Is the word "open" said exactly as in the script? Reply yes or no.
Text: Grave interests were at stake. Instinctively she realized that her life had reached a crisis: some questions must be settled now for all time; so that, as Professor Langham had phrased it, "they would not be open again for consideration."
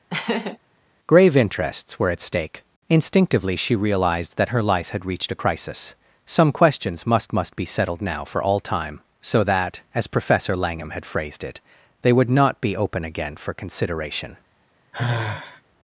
yes